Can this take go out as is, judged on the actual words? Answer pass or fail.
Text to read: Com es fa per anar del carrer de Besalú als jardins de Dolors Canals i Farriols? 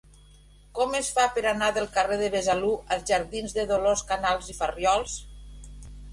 pass